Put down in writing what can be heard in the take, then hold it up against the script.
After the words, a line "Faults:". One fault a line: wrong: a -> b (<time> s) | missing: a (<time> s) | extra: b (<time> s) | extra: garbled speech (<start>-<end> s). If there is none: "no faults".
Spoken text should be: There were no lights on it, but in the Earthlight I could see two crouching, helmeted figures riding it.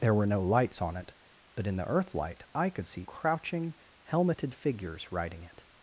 There were no lights on it, but in the Earthlight I could see crouching, helmeted figures riding it.
Faults:
missing: two (3.0 s)